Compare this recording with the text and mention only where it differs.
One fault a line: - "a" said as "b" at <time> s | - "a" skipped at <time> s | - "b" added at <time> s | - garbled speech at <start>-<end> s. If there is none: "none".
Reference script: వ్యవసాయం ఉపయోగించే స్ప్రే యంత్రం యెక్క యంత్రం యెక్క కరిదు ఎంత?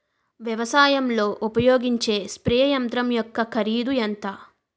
- "లో" added at 1.1 s
- "యంత్రం యెక్క" skipped at 3.4 s